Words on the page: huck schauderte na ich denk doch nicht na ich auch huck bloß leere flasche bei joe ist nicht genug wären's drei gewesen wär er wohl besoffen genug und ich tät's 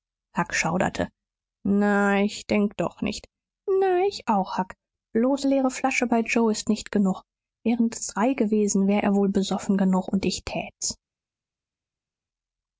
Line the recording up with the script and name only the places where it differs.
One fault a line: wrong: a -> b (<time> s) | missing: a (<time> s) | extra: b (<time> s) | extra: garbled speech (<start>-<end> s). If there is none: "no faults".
no faults